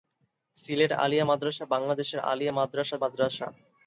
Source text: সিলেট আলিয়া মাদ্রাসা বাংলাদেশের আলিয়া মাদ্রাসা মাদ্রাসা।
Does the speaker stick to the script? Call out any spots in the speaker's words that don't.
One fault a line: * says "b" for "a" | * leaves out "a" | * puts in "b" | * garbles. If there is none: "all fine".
all fine